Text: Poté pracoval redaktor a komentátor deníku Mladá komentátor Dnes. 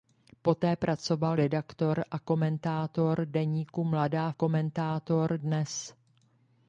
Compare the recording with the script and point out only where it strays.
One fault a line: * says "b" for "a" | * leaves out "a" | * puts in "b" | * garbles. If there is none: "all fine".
all fine